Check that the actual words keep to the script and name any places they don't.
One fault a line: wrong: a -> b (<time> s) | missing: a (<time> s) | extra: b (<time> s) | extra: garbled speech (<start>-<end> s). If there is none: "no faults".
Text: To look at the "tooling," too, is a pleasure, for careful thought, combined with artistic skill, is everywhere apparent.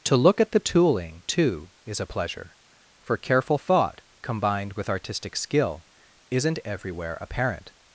wrong: is -> isn't (6.3 s)